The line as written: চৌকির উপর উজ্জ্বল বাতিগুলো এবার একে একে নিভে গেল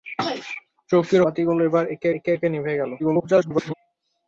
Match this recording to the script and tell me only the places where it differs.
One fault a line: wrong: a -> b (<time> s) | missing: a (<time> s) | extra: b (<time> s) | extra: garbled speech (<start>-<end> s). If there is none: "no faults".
missing: উপর উজ্জ্বল (1.2 s)
extra: একে (2.3 s)
extra: garbled speech (3.0-3.7 s)